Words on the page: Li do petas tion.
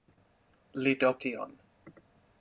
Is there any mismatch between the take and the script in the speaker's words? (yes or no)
yes